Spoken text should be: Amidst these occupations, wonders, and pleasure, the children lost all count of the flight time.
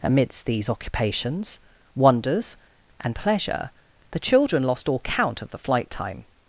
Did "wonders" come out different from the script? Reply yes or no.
no